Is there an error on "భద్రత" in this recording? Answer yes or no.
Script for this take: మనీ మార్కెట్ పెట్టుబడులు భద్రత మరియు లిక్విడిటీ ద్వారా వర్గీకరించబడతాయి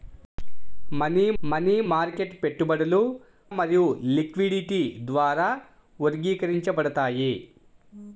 yes